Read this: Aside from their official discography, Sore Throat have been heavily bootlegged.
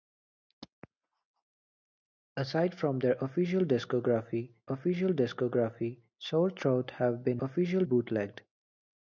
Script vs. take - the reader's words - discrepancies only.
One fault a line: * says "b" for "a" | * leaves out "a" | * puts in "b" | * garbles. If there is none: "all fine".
* puts in "official discography"
* says "official" for "heavily"